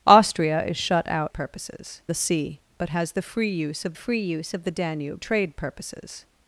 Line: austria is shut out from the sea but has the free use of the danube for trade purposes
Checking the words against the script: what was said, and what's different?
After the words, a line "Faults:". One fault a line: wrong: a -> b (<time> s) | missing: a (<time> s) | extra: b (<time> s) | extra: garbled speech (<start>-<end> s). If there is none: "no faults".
austria is shut out purposes the sea but has the free use of free use of the danube trade purposes
Faults:
wrong: from -> purposes (1.3 s)
extra: free use of (3.9 s)
missing: for (5.2 s)